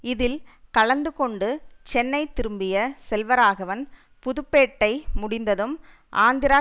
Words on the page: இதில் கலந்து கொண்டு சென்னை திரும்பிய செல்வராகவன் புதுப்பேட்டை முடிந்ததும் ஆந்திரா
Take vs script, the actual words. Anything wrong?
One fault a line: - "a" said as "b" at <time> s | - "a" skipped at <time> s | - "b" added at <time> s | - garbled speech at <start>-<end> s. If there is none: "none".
none